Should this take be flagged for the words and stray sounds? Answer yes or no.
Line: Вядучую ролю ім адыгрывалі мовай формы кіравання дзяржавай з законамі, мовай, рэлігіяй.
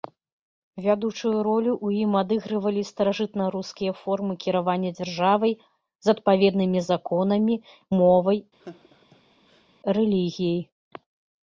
yes